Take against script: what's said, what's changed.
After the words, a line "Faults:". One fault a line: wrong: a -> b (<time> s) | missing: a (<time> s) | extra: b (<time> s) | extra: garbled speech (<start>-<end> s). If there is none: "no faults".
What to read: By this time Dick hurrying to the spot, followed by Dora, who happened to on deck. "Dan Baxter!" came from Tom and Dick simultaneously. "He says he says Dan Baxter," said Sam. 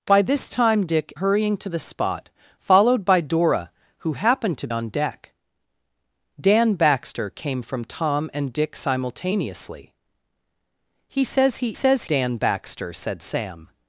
By this time Dick hurrying to the spot, followed by Dora, who happened to on deck. "Dan Baxter!" came from Tom and Dick simultaneously. "He says he says Dan Baxter," said Sam.
Faults:
no faults